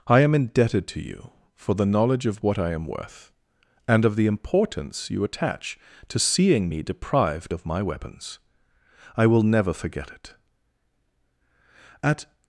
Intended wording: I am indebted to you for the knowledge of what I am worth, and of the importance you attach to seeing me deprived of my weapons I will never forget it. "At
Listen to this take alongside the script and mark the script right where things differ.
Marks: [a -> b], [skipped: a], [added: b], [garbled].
I am indebted to you for the knowledge of what I am worth, and of the importance you attach to seeing me deprived of my weapons I will never forget it. "At